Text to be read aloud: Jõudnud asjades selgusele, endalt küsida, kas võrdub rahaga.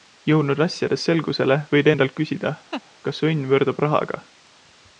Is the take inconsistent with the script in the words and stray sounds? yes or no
yes